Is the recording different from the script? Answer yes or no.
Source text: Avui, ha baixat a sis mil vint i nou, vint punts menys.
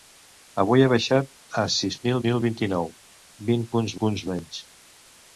yes